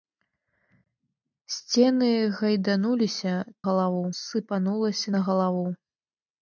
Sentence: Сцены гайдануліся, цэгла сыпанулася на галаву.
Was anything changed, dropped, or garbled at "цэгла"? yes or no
yes